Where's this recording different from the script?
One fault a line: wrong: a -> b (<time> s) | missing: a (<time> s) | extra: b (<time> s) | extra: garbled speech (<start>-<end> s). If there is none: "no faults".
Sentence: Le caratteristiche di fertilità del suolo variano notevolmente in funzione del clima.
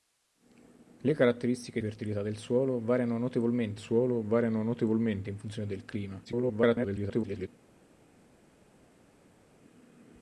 missing: di (1.8 s)
extra: suolo variano notevolmente (3.8 s)
extra: garbled speech (6.2-7.5 s)